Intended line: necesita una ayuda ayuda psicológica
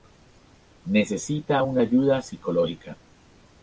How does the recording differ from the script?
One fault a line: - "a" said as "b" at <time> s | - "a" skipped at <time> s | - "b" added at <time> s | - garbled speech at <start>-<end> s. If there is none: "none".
- "ayuda" skipped at 2.2 s